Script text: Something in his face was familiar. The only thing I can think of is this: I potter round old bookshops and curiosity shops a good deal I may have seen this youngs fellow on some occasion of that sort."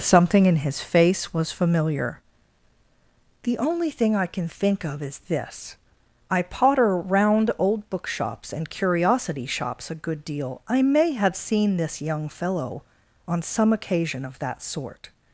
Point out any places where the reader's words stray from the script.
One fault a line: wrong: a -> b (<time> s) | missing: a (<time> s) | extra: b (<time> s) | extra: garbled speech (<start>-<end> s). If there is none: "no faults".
wrong: youngs -> young (12.0 s)